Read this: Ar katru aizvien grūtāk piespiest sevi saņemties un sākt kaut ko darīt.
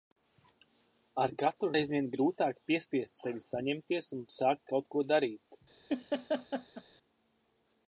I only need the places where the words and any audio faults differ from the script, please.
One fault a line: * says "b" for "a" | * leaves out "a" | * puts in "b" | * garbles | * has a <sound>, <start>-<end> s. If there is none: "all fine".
* has a laugh, 5.9-6.8 s